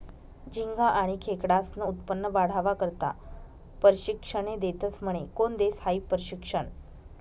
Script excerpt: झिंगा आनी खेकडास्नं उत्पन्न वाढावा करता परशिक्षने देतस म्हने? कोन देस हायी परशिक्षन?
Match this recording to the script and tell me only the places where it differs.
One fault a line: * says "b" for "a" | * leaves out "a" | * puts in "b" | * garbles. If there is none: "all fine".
all fine